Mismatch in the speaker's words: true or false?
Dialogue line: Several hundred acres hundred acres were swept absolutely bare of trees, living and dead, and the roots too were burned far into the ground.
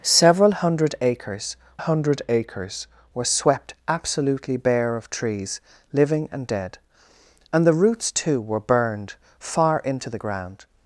false